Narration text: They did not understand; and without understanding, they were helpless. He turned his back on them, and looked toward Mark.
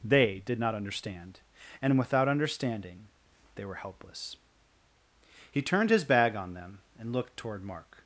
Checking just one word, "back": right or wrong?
wrong